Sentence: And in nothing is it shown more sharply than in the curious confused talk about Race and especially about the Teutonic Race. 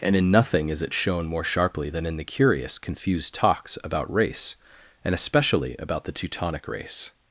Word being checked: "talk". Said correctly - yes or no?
no